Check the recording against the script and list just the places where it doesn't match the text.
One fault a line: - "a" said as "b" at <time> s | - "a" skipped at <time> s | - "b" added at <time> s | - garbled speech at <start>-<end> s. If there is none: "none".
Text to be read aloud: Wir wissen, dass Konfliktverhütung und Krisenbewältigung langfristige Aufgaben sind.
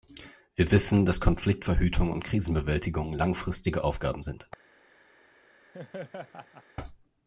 none